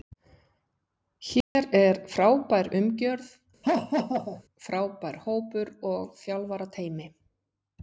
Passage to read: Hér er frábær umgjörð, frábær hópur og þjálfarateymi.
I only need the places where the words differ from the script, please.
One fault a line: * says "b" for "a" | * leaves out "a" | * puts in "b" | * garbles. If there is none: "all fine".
all fine